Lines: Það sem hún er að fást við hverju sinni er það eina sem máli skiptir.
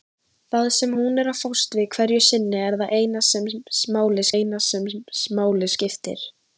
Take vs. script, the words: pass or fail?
fail